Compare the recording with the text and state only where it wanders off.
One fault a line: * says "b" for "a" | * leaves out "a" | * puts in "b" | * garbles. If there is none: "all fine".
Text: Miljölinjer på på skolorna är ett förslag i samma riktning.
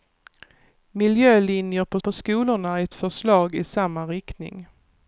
all fine